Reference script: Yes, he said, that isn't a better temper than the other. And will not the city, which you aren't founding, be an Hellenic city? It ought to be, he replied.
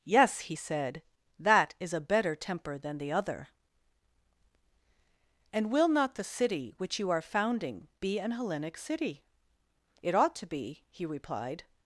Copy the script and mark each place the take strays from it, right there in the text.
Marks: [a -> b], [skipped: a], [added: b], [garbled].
Yes, he said, that [isn't -> is] a better temper than the other. And will not the city, which you [aren't -> are] founding, be an Hellenic city? It ought to be, he replied.